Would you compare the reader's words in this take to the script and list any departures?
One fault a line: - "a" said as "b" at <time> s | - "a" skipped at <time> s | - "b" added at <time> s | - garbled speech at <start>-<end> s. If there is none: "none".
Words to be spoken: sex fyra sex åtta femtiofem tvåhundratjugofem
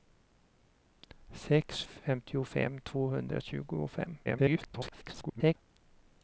- "fyra sex åtta" skipped at 1.8 s
- garbled speech at 4.2-5.5 s